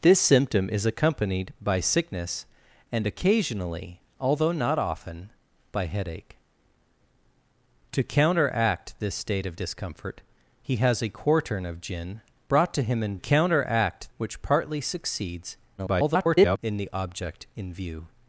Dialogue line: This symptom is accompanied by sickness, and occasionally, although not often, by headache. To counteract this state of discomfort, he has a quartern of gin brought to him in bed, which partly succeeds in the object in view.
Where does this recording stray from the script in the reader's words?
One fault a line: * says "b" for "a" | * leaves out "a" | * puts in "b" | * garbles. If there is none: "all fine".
* says "counteract" for "bed"
* garbles